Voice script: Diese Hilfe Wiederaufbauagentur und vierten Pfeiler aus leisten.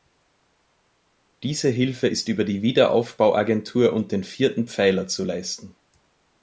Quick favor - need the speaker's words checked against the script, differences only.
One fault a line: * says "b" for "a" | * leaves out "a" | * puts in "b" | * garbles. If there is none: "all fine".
* puts in "ist über die"
* puts in "den"
* says "zu" for "aus"